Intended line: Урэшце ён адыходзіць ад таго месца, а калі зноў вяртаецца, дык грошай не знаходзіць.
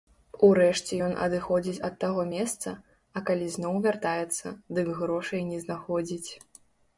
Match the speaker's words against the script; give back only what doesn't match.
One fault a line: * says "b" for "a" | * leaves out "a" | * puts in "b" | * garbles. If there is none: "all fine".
all fine